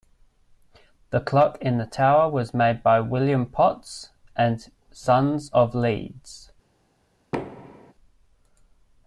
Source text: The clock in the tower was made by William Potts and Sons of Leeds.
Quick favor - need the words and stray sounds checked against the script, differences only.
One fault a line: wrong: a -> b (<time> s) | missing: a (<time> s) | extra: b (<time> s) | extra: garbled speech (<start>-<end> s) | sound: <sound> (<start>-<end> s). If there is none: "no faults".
sound: thud (7.3-7.9 s)